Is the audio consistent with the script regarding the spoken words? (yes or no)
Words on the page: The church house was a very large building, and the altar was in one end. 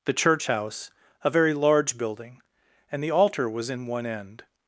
no